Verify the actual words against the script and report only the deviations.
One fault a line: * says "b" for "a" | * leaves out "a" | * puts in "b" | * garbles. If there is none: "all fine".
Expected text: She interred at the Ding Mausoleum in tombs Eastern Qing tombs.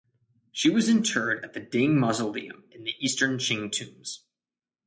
* puts in "was"
* says "the" for "tombs"